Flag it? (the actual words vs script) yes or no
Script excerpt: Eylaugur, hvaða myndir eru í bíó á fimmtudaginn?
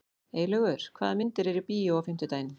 no